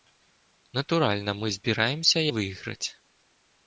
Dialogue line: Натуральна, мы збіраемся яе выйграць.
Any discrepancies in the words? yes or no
yes